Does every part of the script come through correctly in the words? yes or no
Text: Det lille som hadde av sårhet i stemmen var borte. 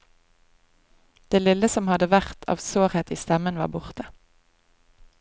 no